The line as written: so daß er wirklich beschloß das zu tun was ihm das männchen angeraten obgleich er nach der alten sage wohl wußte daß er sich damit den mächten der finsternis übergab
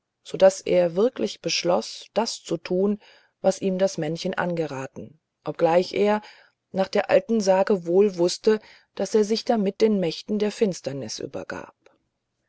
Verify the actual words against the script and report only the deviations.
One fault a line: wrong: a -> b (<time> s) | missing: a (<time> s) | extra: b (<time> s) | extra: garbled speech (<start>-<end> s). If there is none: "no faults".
no faults